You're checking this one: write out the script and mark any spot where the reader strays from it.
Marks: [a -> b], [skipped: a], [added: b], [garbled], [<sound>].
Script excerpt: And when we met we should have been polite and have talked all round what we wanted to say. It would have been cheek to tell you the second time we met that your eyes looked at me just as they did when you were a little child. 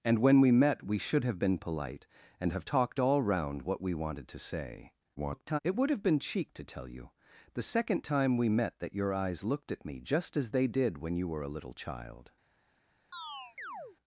And when we met we should have been polite and have talked all round what we wanted to say. [garbled] It would have been cheek to tell you the second time we met that your eyes looked at me just as they did when you were a little child. [chirp]